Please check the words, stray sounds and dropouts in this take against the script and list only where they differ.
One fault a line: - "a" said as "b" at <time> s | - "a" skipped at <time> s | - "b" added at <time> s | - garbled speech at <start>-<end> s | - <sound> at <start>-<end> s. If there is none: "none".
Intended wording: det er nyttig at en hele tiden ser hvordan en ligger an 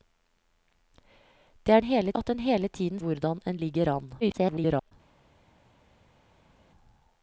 - "nyttig" said as "hele" at 1.8 s
- "ser" skipped at 3.0 s
- garbled speech at 4.2-4.9 s